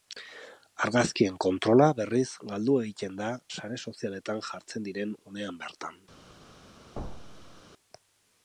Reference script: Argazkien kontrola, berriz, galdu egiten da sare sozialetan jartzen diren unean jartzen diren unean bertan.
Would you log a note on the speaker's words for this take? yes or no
yes